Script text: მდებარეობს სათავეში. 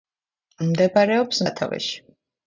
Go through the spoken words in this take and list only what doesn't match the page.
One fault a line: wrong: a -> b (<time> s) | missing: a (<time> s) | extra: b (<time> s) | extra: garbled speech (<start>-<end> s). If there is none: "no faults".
no faults